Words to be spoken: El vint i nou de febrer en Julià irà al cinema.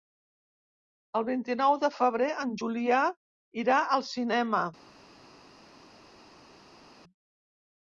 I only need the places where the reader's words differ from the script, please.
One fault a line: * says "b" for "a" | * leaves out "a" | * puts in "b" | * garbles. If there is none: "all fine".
all fine